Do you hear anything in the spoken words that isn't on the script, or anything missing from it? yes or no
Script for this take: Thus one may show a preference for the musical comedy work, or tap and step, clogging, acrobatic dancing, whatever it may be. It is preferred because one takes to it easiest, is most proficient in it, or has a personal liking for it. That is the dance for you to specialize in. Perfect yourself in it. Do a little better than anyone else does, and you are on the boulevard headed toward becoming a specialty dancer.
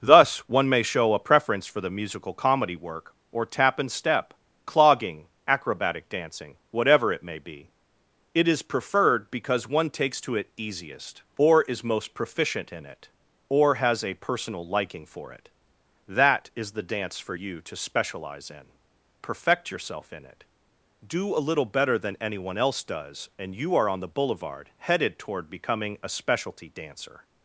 yes